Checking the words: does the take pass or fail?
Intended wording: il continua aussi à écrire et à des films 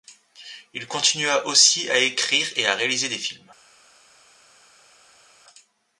fail